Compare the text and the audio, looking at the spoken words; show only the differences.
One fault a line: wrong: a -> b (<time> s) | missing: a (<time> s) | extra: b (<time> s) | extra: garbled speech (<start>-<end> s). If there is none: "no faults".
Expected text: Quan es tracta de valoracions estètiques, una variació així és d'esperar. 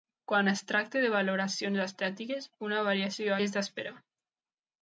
missing: així (3.4 s)